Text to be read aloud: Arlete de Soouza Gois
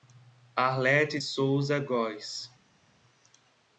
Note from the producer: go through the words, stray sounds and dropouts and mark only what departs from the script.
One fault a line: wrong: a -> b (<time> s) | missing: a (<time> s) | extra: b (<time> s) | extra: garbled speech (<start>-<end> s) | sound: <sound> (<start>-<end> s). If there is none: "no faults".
missing: de (1.2 s)